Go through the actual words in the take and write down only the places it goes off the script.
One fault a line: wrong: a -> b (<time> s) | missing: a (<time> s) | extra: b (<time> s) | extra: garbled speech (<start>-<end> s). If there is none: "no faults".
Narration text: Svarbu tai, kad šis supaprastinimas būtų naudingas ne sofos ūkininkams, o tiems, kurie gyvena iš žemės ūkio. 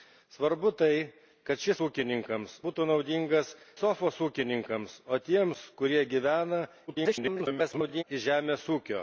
wrong: supaprastinimas -> ūkininkams (1.8 s)
missing: ne (3.5 s)
extra: garbled speech (6.9-8.0 s)